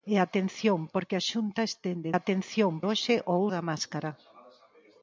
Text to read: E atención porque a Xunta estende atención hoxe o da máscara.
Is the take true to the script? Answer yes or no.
yes